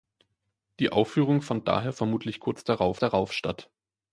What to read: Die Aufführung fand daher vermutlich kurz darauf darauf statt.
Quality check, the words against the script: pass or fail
pass